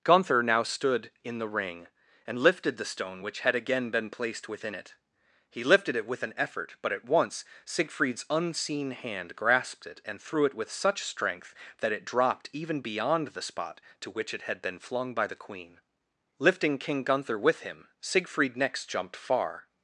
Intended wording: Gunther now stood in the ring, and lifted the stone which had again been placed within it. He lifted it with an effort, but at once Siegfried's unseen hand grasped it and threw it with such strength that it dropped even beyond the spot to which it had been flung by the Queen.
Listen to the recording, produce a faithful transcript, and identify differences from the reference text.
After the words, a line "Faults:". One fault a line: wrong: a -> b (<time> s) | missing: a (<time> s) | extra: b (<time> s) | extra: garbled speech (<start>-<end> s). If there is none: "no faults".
Gunther now stood in the ring, and lifted the stone which had again been placed within it. He lifted it with an effort, but at once Siegfried's unseen hand grasped it and threw it with such strength that it dropped even beyond the spot to which it had been flung by the Queen. Lifting King Gunther with him Siegfried next jumped far
Faults:
extra: Lifting King Gunther with him Siegfried next jumped far (16.4 s)